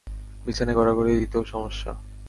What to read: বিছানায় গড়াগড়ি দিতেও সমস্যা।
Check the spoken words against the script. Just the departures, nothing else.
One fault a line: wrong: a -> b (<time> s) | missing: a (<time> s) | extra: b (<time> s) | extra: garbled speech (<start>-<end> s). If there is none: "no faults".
no faults